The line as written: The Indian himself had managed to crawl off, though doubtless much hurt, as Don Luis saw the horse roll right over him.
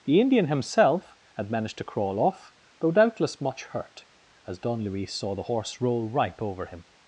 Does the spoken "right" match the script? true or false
false